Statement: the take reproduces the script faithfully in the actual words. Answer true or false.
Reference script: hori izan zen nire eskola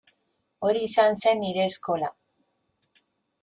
true